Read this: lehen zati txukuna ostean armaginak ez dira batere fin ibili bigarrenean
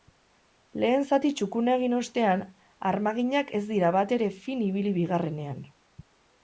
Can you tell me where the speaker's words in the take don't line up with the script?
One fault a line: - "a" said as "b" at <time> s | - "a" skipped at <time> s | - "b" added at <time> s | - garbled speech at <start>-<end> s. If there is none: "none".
- "egin" added at 1.8 s